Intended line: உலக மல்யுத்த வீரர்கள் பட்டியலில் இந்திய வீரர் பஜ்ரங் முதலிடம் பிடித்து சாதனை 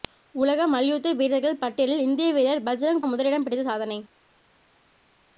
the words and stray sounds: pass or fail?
pass